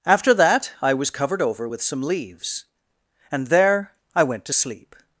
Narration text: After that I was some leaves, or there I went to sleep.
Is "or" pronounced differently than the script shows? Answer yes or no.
yes